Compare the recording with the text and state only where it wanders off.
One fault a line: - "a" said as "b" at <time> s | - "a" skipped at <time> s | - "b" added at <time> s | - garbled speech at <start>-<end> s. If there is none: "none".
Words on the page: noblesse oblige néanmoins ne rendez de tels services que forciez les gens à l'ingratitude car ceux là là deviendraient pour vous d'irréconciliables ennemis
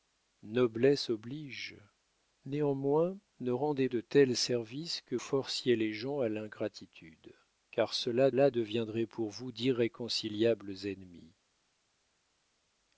none